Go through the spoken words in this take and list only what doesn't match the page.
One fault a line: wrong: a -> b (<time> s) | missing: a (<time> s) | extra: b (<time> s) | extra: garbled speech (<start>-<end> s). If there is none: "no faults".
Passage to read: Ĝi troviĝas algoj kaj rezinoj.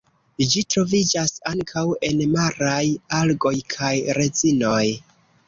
extra: ankaŭ en maraj (1.5 s)